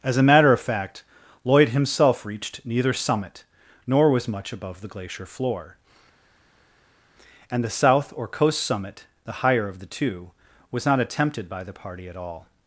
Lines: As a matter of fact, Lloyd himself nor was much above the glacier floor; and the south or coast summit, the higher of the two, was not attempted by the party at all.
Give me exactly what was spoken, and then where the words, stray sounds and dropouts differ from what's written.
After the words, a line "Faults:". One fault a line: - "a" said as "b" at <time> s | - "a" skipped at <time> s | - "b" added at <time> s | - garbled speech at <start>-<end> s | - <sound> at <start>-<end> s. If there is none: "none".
As a matter of fact, Lloyd himself reached neither summit, nor was much above the glacier floor; and the south or coast summit, the higher of the two, was not attempted by the party at all.
Faults:
- "reached neither summit" added at 2.2 s